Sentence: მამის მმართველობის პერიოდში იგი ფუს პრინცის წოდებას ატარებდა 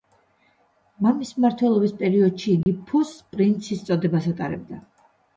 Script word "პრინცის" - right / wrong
right